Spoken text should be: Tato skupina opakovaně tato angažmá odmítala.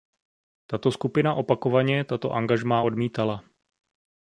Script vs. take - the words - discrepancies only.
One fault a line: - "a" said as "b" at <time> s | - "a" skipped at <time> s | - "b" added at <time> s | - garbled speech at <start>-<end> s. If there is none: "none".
none